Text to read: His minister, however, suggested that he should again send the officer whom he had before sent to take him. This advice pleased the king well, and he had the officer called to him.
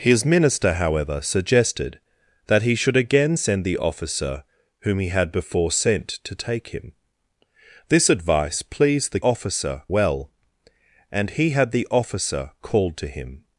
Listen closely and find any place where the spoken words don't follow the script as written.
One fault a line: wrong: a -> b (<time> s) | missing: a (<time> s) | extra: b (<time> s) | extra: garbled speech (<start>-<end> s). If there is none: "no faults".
wrong: king -> officer (9.2 s)